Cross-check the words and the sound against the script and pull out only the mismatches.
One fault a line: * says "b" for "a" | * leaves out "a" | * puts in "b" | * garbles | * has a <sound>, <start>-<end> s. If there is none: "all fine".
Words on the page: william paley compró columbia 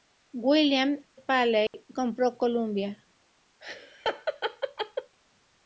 * has a dropout, 1.7-1.7 s
* has a laugh, 3.6-5.2 s